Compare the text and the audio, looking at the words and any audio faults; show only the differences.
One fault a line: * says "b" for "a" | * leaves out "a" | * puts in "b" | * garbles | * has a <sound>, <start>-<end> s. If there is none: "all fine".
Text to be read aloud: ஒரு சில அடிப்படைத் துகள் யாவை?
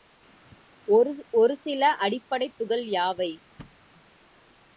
* has a thud, 3.6-3.8 s